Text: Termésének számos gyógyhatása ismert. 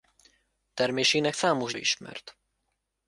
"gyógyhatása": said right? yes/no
no